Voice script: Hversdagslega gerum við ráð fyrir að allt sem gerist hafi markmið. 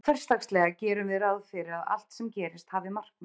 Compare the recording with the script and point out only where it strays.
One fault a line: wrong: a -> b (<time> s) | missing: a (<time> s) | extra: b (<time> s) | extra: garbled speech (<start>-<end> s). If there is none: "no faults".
no faults